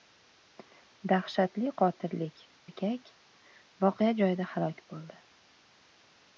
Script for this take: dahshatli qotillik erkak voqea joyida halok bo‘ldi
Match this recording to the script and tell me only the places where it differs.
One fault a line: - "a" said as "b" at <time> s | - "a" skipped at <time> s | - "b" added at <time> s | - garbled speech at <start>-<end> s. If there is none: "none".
none